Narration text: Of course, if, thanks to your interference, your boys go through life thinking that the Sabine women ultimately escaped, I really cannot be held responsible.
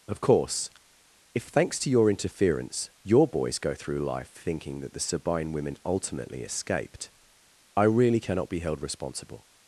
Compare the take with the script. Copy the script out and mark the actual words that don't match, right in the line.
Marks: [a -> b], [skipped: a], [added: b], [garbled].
Of course, if, thanks to your interference, your boys go through life thinking that the Sabine women ultimately escaped, I really cannot be held responsible.